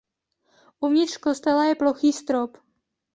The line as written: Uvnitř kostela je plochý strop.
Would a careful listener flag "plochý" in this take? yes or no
no